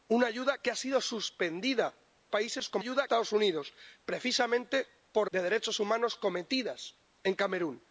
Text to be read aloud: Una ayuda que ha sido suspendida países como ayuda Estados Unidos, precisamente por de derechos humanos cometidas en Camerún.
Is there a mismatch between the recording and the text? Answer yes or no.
no